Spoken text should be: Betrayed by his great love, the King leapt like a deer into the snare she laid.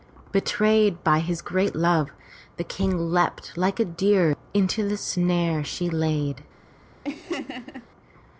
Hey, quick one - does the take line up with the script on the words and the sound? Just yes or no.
no